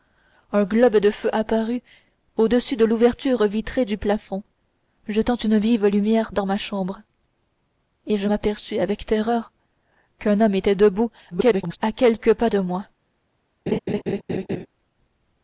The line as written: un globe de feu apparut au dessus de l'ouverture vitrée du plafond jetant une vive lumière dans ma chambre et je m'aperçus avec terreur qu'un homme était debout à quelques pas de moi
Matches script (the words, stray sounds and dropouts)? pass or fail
fail